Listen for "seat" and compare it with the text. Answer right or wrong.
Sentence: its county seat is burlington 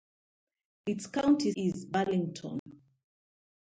wrong